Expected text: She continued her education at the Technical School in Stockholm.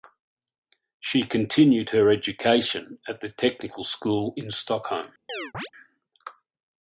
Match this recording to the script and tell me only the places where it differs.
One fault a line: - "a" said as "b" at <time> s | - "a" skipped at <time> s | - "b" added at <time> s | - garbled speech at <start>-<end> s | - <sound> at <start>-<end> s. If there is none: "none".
- chirp at 5.3-5.7 s